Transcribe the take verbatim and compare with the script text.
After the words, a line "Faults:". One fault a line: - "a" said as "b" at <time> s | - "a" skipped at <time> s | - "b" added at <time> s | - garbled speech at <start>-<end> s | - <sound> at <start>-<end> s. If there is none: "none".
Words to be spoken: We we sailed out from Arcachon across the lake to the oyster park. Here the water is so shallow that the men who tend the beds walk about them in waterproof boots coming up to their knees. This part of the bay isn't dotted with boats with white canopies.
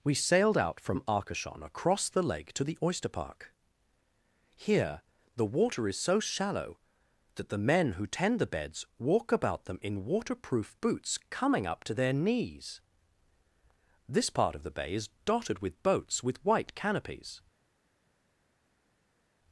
We sailed out from Arcachon across the lake to the oyster park. Here the water is so shallow that the men who tend the beds walk about them in waterproof boots coming up to their knees. This part of the bay is dotted with boats with white canopies.
Faults:
- "we" skipped at 0.1 s
- "isn't" said as "is" at 14.9 s